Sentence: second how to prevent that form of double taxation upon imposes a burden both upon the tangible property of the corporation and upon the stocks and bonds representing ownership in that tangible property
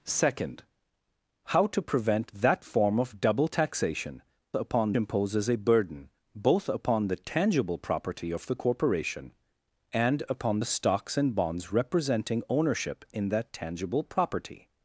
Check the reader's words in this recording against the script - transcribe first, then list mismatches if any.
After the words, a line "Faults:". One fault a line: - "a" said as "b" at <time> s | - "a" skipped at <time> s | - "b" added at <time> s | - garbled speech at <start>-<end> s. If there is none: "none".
second how to prevent that form of double taxation upon imposes a burden both upon the tangible property of the corporation and upon the stocks and bonds representing ownership in that tangible property
Faults:
none